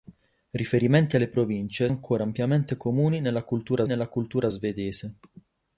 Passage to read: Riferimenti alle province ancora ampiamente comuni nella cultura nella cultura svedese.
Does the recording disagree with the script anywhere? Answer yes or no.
no